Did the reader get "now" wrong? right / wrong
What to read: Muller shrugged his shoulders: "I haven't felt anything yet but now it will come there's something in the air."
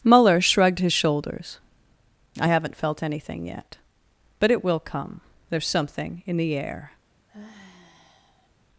wrong